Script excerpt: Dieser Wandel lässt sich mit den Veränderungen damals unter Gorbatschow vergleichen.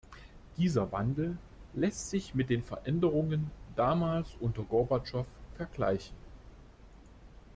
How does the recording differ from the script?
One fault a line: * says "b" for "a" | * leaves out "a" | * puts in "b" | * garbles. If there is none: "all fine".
all fine